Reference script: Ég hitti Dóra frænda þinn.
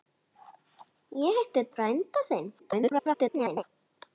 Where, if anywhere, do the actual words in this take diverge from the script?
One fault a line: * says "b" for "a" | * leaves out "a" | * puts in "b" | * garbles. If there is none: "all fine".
* leaves out "Dóra"
* garbles